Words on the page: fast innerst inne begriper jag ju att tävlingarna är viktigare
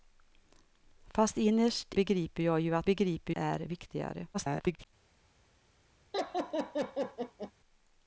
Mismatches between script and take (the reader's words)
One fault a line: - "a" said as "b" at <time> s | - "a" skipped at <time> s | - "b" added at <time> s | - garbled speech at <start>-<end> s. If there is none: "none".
- "inne" skipped at 1.9 s
- "tävlingarna" said as "begriper" at 2.8 s
- garbled speech at 4.3-4.9 s